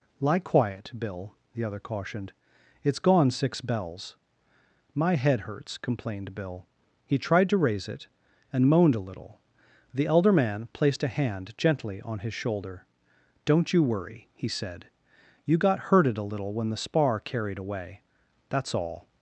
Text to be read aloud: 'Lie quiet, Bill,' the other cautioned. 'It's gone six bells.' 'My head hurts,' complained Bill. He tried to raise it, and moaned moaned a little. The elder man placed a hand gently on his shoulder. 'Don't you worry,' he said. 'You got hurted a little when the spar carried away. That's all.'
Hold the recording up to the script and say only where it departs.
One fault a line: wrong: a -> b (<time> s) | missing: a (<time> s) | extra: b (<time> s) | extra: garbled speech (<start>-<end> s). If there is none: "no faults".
missing: moaned (8.9 s)